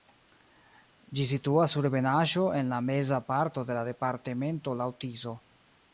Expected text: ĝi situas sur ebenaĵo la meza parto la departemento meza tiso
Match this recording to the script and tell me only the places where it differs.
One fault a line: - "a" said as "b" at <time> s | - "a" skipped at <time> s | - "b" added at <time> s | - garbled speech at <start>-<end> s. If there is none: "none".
- "en" added at 2.6 s
- "de" added at 3.7 s
- "meza" said as "laŭ" at 4.8 s